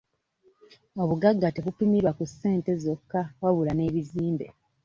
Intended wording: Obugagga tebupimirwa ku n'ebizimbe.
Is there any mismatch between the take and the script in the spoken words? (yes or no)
yes